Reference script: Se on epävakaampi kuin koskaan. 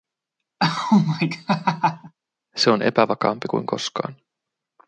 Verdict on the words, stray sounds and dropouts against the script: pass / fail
fail